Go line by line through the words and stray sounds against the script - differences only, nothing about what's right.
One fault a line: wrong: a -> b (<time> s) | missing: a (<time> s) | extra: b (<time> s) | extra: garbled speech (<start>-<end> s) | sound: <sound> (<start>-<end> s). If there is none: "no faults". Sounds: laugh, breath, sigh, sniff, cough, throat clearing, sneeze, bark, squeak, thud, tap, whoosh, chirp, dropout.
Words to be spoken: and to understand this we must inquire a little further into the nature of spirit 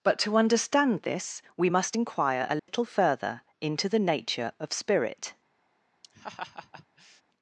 wrong: and -> but (0.0 s)
sound: dropout (2.6-2.7 s)
sound: laugh (6.0-7.2 s)